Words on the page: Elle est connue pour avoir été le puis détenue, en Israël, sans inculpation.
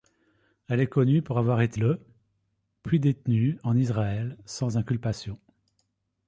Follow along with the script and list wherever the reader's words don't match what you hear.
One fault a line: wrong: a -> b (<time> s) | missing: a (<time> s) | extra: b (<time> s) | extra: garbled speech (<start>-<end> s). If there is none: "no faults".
no faults